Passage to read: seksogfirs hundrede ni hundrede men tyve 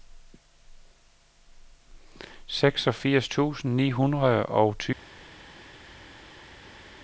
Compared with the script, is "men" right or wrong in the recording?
wrong